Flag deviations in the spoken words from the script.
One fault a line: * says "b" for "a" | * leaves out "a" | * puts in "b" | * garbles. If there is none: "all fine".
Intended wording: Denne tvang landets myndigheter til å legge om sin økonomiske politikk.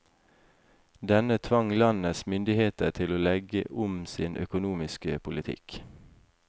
all fine